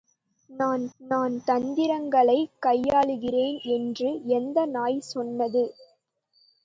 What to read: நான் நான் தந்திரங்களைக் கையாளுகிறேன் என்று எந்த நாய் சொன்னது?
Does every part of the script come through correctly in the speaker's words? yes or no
yes